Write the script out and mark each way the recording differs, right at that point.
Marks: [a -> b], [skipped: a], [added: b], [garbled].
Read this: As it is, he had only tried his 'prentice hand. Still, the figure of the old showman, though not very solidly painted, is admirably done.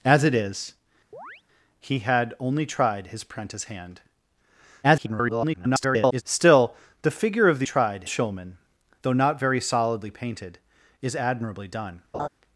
As it is, he had only tried his 'prentice hand. [garbled] Still, the figure of the [old -> tried] showman, though not very solidly painted, is admirably done.